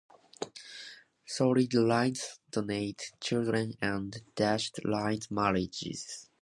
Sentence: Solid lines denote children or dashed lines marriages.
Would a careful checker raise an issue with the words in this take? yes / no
yes